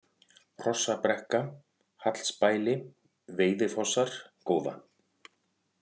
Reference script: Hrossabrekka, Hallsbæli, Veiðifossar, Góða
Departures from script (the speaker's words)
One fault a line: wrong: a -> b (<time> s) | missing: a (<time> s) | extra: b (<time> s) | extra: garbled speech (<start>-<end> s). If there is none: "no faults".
no faults